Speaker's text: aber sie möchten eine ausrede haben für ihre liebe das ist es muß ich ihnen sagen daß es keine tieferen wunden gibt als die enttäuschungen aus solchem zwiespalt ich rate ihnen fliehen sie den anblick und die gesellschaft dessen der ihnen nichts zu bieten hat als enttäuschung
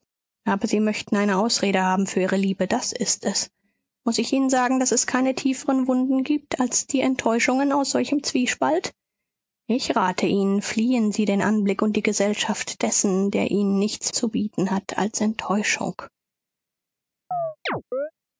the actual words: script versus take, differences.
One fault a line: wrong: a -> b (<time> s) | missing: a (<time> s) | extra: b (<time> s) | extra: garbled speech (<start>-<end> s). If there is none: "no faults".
no faults